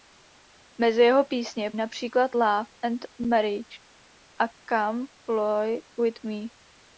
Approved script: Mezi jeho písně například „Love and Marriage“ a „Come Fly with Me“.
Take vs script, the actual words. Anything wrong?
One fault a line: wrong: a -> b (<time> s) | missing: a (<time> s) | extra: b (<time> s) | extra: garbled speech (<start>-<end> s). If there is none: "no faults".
no faults